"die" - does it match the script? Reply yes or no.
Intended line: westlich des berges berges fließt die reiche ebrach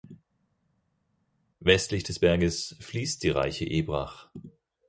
yes